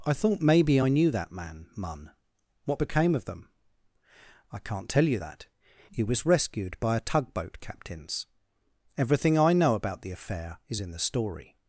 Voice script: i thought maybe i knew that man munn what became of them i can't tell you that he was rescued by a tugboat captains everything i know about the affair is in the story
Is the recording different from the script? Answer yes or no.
no